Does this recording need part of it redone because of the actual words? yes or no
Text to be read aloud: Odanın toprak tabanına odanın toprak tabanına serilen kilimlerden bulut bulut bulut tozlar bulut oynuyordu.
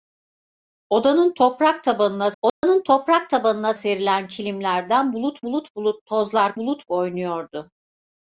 no